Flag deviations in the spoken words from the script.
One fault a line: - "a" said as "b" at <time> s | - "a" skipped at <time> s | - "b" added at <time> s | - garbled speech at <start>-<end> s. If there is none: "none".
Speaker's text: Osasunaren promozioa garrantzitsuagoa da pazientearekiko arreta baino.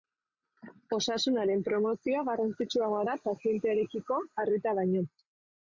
none